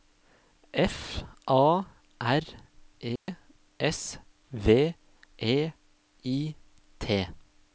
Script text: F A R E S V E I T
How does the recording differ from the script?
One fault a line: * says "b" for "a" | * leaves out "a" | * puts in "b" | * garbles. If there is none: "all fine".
all fine